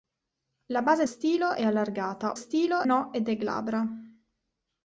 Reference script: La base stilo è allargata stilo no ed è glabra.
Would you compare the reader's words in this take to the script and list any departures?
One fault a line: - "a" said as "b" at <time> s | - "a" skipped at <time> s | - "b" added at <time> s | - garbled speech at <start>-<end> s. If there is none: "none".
none